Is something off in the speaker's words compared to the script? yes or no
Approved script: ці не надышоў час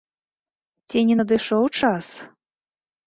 no